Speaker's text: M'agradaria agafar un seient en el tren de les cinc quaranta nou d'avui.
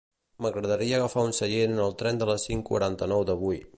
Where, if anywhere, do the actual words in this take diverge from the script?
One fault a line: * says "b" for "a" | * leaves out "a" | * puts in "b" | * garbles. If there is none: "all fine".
all fine